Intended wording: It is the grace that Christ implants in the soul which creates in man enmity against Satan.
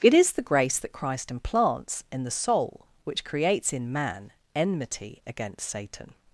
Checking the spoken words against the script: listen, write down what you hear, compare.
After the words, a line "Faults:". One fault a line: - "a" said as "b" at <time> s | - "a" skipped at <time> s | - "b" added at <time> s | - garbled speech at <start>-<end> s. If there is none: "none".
It is the grace that Christ implants in the soul which creates in man enmity against Satan.
Faults:
none